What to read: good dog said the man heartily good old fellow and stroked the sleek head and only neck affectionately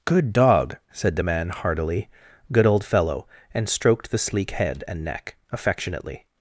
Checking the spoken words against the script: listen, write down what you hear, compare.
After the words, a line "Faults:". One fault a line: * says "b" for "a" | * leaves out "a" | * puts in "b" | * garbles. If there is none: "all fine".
good dog said the man heartily good old fellow and stroked the sleek head and neck affectionately
Faults:
* leaves out "only"